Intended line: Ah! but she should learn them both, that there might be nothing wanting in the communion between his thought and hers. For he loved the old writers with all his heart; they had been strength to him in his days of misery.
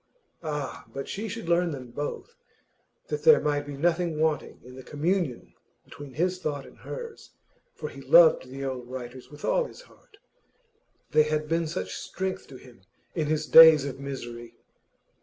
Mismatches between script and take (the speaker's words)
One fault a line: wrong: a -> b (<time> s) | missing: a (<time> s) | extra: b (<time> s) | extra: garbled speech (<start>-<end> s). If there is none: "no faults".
extra: such (11.7 s)